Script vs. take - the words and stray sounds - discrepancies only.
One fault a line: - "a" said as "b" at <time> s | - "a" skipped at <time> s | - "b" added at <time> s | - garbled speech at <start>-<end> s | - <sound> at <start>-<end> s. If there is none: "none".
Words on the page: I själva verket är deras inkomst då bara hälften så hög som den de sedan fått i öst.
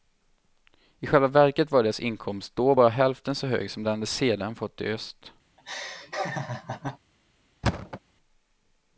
- "är" said as "var" at 1.7 s
- laugh at 5.6-7.0 s
- thud at 7.6-8.0 s